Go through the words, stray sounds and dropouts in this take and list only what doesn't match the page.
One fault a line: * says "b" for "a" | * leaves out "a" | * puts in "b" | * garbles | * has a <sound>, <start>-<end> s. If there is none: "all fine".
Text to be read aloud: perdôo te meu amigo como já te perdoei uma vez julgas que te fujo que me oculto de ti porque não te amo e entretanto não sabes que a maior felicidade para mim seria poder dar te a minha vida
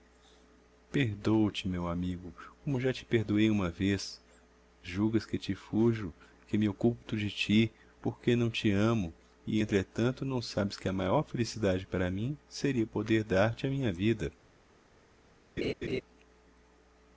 * has a laugh, 15.6-16.0 s